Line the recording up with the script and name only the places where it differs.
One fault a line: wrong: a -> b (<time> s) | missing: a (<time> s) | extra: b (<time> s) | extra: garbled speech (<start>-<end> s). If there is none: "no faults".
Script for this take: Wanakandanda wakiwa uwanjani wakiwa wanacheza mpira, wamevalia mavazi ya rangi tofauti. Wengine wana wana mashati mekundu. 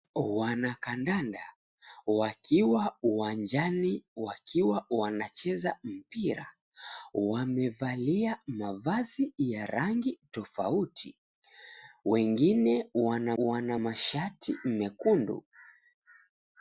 no faults